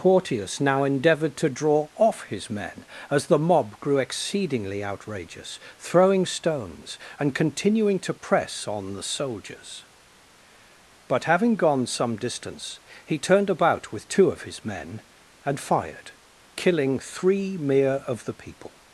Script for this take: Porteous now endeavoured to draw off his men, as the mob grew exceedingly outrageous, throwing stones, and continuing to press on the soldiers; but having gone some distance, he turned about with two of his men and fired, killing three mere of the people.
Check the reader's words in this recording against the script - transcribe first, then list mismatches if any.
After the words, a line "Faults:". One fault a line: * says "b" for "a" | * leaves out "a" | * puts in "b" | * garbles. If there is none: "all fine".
Porteous now endeavoured to draw off his men, as the mob grew exceedingly outrageous, throwing stones, and continuing to press on the soldiers; but having gone some distance, he turned about with two of his men and fired, killing three mere of the people.
Faults:
all fine